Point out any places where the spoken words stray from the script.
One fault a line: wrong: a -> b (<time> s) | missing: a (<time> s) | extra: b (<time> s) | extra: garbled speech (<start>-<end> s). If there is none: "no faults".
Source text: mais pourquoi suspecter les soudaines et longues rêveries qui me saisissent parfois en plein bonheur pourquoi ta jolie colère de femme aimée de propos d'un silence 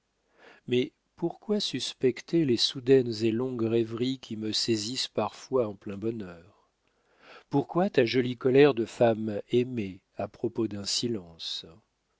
wrong: de -> à (10.2 s)